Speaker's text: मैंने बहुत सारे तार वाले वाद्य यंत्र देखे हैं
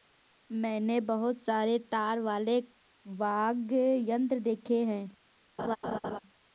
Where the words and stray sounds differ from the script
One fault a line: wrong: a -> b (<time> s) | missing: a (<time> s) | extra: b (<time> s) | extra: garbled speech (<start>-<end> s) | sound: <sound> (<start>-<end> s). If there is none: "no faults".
sound: laugh (5.6-6.2 s)